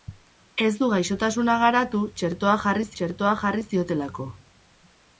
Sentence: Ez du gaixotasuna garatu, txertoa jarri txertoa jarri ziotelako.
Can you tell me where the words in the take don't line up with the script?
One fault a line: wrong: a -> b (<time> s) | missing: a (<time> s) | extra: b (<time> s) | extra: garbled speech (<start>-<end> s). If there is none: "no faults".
no faults